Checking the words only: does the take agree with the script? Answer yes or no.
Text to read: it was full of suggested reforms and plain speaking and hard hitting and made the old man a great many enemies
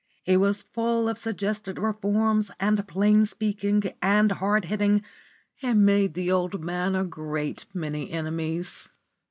yes